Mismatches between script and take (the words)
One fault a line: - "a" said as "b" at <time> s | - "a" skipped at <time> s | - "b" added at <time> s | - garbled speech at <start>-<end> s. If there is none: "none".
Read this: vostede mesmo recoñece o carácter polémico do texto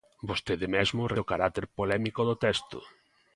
- "recoñece" skipped at 1.1 s